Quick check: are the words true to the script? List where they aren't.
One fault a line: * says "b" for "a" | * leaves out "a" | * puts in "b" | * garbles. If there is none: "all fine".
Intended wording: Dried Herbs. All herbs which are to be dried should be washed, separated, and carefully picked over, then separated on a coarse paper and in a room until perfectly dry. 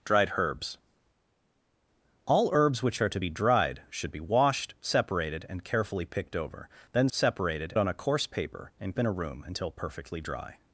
all fine